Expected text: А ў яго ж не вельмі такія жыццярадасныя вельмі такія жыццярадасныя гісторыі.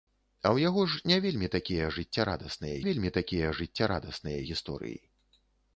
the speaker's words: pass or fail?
pass